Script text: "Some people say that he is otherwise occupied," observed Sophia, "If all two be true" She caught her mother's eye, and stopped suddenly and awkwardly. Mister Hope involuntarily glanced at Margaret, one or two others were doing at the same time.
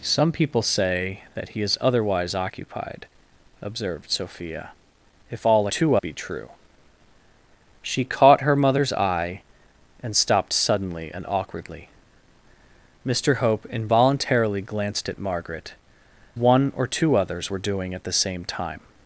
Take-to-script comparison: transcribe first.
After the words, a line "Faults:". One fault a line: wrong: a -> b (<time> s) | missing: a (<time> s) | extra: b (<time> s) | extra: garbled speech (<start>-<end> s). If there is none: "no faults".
"Some people say that he is otherwise occupied," observed Sophia, "If all two be true" She caught her mother's eye, and stopped suddenly and awkwardly. Mister Hope involuntarily glanced at Margaret, one or two others were doing at the same time.
Faults:
no faults